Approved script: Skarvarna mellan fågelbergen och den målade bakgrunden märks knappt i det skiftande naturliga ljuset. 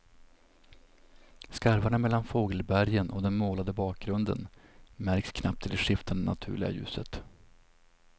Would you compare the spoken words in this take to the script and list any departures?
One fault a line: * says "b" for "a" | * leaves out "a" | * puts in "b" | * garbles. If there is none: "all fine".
all fine